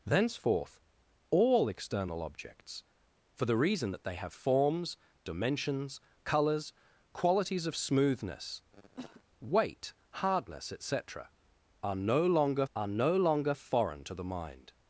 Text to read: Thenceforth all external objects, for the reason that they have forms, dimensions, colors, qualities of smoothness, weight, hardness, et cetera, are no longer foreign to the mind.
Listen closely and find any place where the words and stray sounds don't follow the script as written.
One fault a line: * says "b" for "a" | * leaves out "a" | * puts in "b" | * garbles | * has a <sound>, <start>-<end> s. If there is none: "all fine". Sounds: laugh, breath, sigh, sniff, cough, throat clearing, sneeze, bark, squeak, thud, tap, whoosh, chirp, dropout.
* has a cough, 8.7-9.2 s
* puts in "are no longer"